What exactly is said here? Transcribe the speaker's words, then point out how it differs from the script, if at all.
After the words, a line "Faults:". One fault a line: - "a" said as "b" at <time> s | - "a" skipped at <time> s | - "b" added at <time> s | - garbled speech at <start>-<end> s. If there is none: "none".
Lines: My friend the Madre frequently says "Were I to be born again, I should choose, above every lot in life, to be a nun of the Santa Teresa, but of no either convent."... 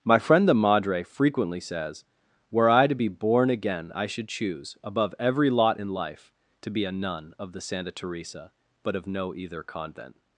My friend the Madre frequently says "Were I to be born again, I should choose, above every lot in life, to be a nun of the Santa Teresa, but of no either convent."...
Faults:
none